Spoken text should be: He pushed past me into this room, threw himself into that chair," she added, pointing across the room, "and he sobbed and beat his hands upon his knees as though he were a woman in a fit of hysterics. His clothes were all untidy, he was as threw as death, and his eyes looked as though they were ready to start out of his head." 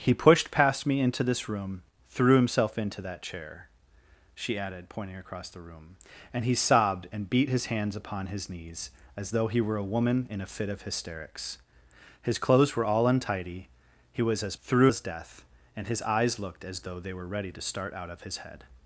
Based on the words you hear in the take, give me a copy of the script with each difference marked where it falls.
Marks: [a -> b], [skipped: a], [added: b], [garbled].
He pushed past me into this room, threw himself into that chair," she added, pointing across the room, "and he sobbed and beat his hands upon his knees as though he were a woman in a fit of hysterics. His clothes were all untidy, he was as threw as death, and his eyes looked as though they were ready to start out of his head."